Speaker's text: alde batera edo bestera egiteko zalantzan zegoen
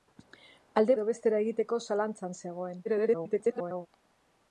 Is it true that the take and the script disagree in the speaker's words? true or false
true